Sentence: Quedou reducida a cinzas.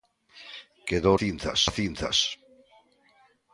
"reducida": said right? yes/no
no